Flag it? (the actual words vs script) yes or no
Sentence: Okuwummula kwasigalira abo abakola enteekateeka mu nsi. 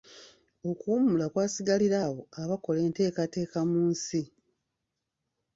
no